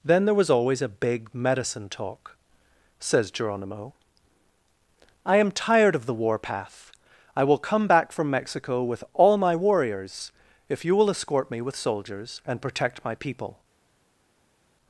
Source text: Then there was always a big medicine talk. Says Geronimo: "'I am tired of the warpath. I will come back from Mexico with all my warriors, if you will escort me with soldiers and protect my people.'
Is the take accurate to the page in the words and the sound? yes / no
yes